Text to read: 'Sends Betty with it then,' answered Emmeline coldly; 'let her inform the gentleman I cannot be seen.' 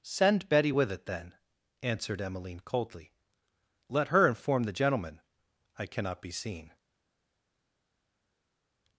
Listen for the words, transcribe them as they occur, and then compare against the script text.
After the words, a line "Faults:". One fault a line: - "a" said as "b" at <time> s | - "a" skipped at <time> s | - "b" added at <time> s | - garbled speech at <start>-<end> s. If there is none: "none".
'Send Betty with it then,' answered Emmeline coldly; 'let her inform the gentleman I cannot be seen.'
Faults:
- "Sends" said as "Send" at 0.0 s